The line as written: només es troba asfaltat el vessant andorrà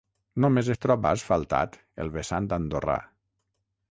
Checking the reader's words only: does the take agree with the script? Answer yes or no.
yes